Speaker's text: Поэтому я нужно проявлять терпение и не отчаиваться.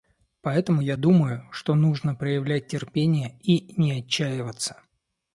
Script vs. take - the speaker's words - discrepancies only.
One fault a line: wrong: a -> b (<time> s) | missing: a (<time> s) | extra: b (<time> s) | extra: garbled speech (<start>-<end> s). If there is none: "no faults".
extra: думаю что (0.9 s)